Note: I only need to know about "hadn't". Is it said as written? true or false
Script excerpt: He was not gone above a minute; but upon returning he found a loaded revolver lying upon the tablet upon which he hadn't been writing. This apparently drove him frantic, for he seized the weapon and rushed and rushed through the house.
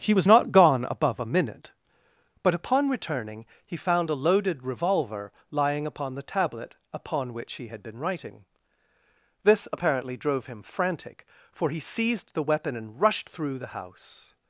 false